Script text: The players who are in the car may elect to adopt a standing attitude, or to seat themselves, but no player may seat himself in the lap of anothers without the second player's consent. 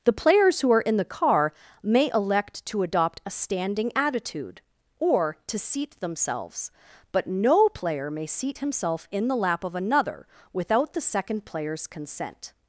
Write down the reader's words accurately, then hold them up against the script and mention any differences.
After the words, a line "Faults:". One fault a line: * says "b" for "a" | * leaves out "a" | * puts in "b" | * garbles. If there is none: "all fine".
The players who are in the car may elect to adopt a standing attitude, or to seat themselves, but no player may seat himself in the lap of another without the second player's consent.
Faults:
* says "another" for "anothers"